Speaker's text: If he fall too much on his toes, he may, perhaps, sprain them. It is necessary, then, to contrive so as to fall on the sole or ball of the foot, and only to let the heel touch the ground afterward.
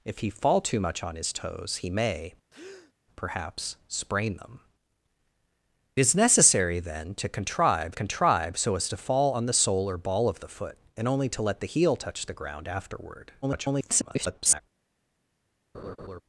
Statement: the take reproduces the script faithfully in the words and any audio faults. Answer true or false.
false